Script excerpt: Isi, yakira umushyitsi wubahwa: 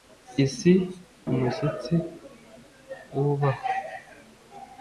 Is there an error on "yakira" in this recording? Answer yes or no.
yes